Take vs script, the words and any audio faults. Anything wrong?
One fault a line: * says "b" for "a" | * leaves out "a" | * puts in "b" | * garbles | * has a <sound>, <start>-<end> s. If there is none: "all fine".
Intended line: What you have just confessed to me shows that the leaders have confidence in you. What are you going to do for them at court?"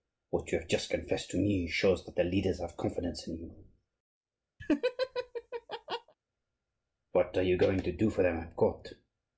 * has a laugh, 4.6-6.1 s